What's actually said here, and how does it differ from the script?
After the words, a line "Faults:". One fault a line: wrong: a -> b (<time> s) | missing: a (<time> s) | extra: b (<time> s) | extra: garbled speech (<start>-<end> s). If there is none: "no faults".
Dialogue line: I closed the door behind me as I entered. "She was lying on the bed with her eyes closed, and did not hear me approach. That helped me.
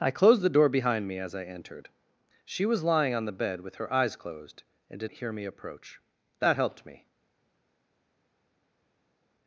I closed the door behind me as I entered. "She was lying on the bed with her eyes closed, and did hear me approach. That helped me.
Faults:
missing: not (5.1 s)